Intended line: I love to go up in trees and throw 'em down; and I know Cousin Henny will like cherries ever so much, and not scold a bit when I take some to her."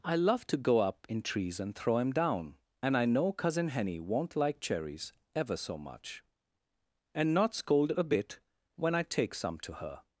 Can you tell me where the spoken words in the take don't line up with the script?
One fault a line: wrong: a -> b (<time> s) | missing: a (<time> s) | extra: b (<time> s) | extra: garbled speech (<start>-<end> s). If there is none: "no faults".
wrong: will -> won't (4.0 s)